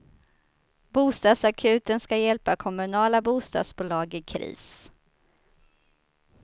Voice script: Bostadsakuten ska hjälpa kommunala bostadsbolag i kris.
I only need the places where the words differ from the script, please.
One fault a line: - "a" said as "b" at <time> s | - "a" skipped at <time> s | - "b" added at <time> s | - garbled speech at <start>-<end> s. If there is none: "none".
none